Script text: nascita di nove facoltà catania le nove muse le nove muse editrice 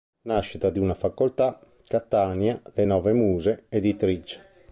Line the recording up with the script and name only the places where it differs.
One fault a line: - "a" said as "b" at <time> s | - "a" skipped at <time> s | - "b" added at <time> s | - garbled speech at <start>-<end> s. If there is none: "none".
- "nove" said as "una" at 0.8 s
- "le nove muse" skipped at 3.6 s